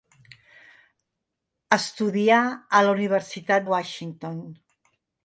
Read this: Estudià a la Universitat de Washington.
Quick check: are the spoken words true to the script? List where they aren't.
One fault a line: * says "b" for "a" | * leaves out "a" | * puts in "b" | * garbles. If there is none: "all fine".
* leaves out "de"